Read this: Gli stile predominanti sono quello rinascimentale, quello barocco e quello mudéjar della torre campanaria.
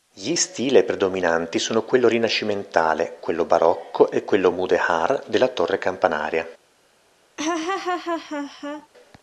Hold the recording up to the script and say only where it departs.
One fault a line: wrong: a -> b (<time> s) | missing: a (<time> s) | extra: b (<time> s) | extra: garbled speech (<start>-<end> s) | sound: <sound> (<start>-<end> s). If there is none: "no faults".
sound: laugh (7.4-8.9 s)